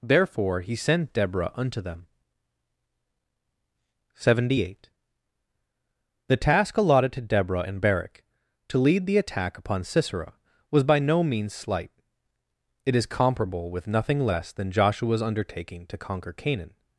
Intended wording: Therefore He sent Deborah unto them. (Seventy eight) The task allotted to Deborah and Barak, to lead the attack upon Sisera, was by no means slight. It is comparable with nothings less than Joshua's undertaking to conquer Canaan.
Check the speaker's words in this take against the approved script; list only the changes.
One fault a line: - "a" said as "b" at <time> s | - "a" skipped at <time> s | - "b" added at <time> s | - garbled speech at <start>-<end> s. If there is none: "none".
- "nothings" said as "nothing" at 13.9 s